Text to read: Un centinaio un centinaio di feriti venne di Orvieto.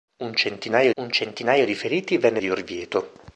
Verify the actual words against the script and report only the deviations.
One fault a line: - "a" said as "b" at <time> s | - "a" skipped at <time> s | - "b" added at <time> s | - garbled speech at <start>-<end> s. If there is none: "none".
none